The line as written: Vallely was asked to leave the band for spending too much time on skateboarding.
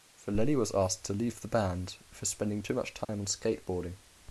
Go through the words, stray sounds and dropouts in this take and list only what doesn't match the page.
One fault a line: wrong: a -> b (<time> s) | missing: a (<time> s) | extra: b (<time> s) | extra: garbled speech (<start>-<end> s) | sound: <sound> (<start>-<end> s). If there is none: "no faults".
sound: dropout (3.0-3.1 s)